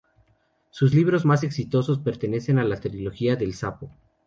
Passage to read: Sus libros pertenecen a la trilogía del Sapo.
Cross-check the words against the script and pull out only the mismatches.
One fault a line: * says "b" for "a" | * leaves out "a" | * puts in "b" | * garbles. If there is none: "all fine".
* puts in "más exitosos"